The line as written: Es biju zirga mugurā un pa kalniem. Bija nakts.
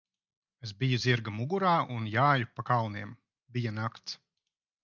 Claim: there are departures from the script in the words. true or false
true